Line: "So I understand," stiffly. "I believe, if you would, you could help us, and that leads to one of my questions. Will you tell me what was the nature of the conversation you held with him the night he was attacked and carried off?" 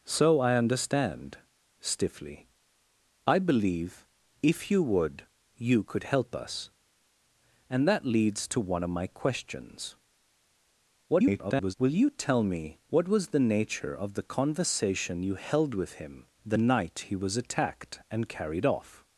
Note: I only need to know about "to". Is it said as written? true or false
true